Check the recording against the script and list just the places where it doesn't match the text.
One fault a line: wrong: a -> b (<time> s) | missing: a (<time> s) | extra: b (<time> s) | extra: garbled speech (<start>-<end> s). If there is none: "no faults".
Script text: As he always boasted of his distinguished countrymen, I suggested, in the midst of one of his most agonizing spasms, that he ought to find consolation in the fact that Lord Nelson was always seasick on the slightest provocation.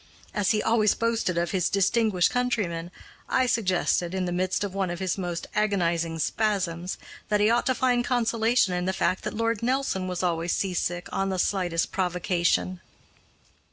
no faults